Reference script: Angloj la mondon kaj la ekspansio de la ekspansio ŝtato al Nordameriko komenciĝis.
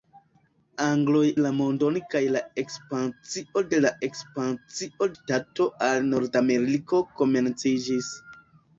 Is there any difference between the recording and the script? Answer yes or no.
no